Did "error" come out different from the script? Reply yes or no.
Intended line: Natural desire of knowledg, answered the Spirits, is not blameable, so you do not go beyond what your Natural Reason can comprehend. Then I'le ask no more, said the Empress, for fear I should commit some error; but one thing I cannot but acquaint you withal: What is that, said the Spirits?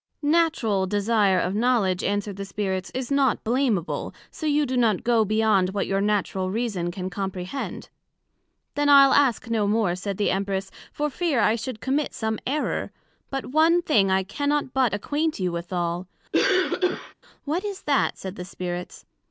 no